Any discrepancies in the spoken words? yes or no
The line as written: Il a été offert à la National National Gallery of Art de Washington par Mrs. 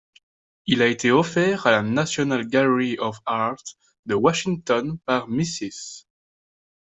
yes